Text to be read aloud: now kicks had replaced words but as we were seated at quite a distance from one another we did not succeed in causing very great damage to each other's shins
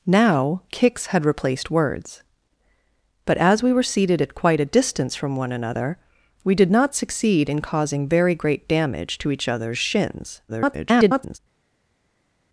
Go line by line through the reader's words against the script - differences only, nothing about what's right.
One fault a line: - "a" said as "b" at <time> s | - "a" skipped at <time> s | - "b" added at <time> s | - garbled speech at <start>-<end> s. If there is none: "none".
- garbled speech at 10.5-11.4 s